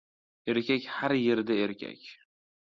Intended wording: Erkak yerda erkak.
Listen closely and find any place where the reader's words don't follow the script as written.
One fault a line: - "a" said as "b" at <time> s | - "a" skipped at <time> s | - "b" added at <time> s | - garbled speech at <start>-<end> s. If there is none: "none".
- "har" added at 0.9 s